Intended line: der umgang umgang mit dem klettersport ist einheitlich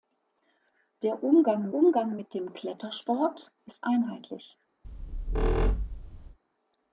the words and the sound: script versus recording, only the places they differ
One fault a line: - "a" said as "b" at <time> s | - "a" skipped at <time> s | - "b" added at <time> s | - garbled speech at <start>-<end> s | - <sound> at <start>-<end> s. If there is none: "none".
- squeak at 4.8-6.4 s